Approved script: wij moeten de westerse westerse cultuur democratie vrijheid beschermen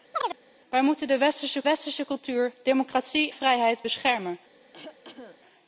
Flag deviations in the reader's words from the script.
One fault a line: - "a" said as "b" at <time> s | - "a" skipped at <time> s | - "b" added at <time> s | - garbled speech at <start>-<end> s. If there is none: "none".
none